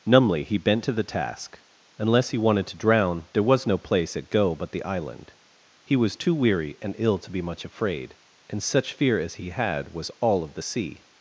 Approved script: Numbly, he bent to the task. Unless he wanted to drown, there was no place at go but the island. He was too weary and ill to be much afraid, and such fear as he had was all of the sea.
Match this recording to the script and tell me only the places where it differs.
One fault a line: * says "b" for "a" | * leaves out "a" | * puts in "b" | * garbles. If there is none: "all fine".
all fine